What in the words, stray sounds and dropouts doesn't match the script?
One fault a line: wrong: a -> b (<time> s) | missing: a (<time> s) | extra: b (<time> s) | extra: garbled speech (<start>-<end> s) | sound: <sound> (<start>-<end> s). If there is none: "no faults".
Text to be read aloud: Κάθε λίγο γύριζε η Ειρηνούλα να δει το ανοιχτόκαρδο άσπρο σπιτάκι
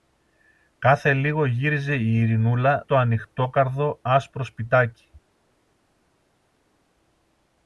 missing: να δει (2.8 s)